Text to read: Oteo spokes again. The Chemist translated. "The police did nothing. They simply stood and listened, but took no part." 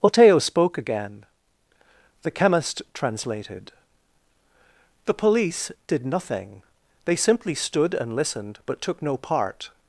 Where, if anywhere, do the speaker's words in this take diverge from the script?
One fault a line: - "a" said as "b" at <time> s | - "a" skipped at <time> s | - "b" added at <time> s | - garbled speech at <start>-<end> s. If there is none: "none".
- "spokes" said as "spoke" at 0.4 s